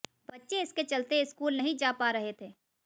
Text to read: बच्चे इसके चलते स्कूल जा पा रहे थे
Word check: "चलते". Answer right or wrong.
right